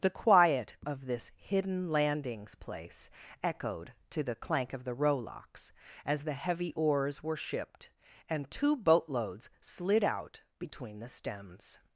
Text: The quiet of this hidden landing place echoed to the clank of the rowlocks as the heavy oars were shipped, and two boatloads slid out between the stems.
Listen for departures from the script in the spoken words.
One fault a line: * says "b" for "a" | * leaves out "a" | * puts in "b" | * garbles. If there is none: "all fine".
* says "landings" for "landing"